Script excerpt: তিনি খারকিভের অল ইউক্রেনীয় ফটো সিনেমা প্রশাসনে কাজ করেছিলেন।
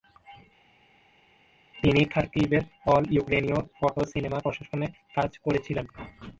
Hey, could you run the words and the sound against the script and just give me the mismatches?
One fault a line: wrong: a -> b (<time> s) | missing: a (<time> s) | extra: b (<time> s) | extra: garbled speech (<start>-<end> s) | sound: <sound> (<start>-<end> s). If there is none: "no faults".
no faults